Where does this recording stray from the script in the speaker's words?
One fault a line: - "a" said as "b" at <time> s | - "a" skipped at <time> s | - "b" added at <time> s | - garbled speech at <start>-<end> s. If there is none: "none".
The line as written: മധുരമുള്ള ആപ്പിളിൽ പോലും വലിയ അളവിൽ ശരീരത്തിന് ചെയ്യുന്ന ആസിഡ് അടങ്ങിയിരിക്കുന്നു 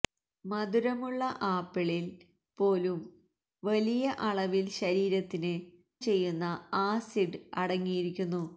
none